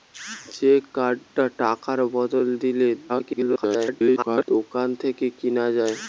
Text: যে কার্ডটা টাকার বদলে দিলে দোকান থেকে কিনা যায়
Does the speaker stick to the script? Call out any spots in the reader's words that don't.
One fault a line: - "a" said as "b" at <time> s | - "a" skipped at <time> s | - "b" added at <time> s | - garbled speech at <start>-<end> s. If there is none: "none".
- garbled speech at 3.1-4.5 s